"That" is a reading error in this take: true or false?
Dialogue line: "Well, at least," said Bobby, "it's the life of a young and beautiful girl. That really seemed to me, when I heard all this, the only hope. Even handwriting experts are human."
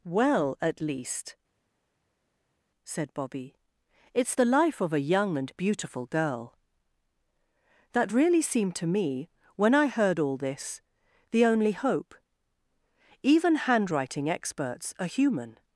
false